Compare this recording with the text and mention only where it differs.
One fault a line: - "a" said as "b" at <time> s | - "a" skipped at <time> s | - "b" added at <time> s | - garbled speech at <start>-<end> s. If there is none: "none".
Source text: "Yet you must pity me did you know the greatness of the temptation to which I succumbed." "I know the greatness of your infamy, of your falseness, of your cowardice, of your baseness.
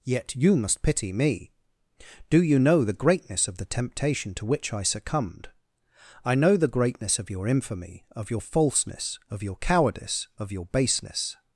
- "did" said as "do" at 2.3 s